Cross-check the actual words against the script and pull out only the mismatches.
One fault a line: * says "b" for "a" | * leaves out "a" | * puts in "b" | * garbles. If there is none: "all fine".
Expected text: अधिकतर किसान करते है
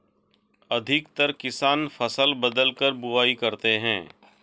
* puts in "फसल बदलकर बुवाई"